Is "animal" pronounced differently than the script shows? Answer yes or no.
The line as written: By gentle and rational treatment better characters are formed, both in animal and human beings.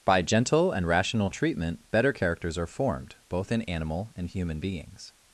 no